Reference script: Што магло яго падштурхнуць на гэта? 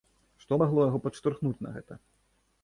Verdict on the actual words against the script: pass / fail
pass